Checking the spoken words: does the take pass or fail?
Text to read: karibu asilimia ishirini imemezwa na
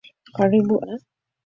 fail